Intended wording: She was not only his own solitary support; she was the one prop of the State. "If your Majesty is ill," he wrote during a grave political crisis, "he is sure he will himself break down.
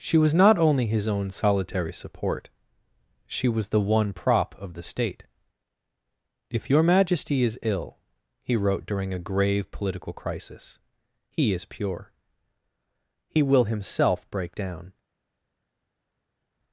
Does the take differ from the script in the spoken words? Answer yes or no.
yes